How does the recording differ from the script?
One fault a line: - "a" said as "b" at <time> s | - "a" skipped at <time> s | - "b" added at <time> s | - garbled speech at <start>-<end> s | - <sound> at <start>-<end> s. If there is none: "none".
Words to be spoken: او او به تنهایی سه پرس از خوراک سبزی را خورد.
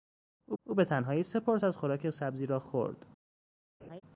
- laugh at 3.8-4.0 s